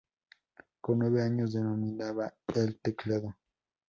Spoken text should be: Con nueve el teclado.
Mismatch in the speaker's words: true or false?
true